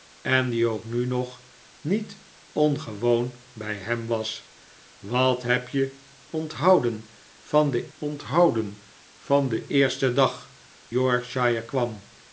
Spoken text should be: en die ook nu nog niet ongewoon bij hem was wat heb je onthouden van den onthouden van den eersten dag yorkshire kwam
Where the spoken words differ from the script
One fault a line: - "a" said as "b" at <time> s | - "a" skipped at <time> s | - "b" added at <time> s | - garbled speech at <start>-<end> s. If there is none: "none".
none